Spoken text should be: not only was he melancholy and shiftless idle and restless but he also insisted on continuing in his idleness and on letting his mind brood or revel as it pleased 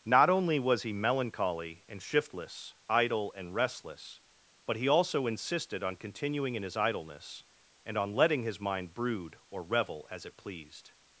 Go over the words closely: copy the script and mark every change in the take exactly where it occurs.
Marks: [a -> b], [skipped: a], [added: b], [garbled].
not only was he melancholy and shiftless idle and restless but he also insisted on continuing in his idleness and on letting his mind brood or revel as it pleased